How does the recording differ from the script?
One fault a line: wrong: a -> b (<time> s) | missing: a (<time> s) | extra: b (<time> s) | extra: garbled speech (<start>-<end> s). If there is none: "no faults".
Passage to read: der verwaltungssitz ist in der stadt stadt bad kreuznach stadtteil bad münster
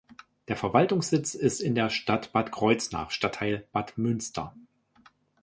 missing: stadt (2.3 s)